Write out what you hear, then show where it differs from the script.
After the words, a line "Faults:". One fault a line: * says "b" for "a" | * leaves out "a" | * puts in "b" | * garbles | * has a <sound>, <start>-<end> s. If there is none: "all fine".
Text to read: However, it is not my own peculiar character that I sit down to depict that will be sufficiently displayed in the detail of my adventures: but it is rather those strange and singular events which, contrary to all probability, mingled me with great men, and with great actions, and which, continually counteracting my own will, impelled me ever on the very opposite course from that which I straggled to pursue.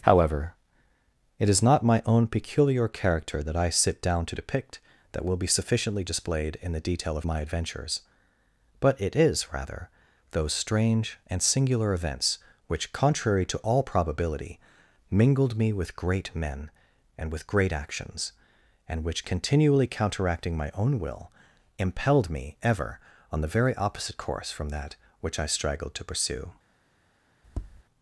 However, it is not my own peculiar character that I sit down to depict that will be sufficiently displayed in the detail of my adventures: but it is rather those strange and singular events which, contrary to all probability, mingled me with great men, and with great actions, and which, continually counteracting my own will, impelled me ever on the very opposite course from that which I straggled to pursue.
Faults:
* has a tap, 27.4-27.8 s